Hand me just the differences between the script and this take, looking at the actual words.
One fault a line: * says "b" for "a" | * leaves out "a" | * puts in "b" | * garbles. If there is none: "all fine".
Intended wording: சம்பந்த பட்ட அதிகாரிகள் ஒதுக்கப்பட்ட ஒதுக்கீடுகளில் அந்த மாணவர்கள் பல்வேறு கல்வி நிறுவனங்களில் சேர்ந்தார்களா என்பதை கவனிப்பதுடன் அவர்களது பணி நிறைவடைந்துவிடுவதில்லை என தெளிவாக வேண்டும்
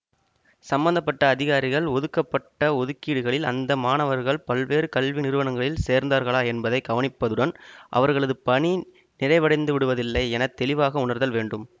* puts in "உணர்தல்"